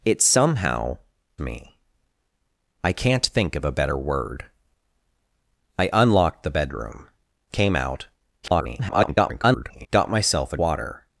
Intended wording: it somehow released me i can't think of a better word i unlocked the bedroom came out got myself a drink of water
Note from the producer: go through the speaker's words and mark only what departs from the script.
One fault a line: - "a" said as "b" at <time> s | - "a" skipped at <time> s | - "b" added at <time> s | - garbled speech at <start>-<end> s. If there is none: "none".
- "released" skipped at 1.0 s
- garbled speech at 8.4-9.9 s
- "drink of" skipped at 10.6 s